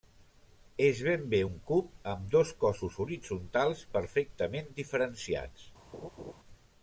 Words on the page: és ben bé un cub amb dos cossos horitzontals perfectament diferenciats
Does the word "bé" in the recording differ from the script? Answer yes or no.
no